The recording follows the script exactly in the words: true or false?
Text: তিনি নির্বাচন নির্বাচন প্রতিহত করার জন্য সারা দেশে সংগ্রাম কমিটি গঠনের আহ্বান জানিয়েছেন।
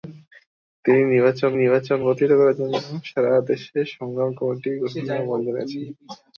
true